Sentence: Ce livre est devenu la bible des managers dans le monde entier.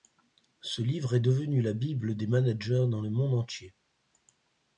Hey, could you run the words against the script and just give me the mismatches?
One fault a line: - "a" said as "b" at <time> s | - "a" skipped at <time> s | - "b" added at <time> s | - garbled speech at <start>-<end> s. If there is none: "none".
none